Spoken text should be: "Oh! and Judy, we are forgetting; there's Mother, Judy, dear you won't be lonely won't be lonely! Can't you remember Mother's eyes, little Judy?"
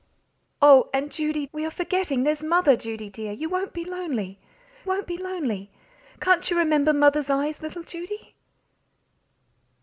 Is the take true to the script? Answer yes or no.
yes